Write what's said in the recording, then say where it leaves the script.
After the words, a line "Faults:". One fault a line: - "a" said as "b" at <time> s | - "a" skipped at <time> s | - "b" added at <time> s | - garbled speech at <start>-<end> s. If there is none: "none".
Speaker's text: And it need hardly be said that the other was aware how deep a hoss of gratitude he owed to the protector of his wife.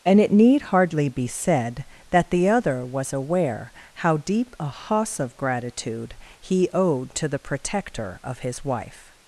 And it need hardly be said that the other was aware how deep a hoss of gratitude he owed to the protector of his wife.
Faults:
none